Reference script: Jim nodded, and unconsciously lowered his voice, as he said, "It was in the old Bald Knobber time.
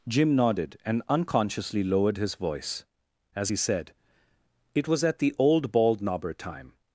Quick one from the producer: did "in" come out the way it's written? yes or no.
no